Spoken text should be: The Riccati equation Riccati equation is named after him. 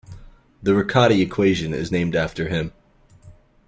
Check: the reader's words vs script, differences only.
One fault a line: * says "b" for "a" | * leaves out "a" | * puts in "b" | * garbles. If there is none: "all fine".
* leaves out "Riccati equation"